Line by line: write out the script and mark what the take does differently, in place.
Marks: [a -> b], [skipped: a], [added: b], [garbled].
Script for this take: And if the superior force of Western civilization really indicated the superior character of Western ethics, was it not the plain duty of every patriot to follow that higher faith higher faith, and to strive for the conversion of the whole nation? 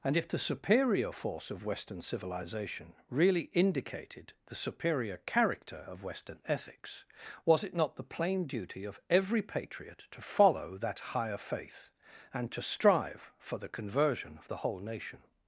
And if the superior force of Western civilization really indicated the superior character of Western ethics, was it not the plain duty of every patriot to follow that higher faith [skipped: higher faith,] and to strive for the conversion of the whole nation?